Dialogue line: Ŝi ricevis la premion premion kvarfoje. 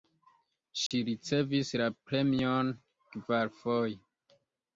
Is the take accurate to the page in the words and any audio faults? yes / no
no